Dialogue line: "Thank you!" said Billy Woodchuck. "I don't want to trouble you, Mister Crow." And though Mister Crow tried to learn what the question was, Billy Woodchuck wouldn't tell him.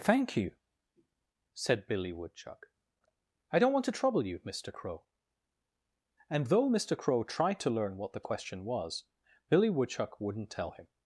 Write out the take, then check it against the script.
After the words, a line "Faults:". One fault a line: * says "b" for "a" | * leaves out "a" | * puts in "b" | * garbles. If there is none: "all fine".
"Thank you!" said Billy Woodchuck. "I don't want to trouble you, Mister Crow." And though Mister Crow tried to learn what the question was, Billy Woodchuck wouldn't tell him.
Faults:
all fine